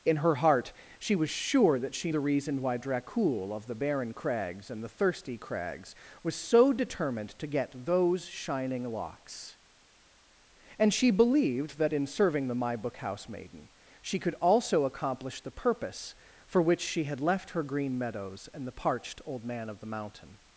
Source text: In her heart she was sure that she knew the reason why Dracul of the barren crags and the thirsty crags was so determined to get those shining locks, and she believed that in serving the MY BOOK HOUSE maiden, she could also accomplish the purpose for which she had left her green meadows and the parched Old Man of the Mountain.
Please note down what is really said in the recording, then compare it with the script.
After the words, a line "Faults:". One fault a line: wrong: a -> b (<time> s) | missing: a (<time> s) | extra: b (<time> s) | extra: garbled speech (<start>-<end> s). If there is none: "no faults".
In her heart she was sure that she the reason why Dracul of the barren crags and the thirsty crags was so determined to get those shining locks, and she believed that in serving the MY BOOK HOUSE maiden, she could also accomplish the purpose for which she had left her green meadows and the parched Old Man of the Mountain.
Faults:
missing: knew (2.1 s)